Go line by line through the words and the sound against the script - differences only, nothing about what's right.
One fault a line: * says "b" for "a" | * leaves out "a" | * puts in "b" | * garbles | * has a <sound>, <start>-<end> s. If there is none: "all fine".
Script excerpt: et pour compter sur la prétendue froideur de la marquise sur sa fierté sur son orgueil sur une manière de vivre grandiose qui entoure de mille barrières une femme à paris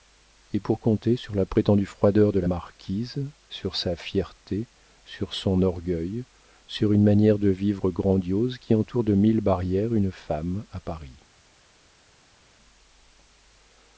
all fine